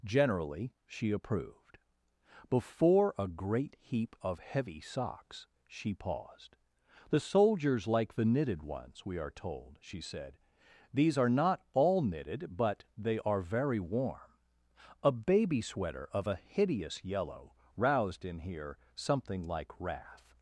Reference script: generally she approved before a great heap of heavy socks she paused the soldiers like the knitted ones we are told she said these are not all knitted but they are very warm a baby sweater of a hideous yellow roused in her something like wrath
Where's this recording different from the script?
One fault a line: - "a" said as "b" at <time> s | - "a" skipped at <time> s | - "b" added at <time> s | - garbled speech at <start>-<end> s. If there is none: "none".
- "her" said as "here" at 18.4 s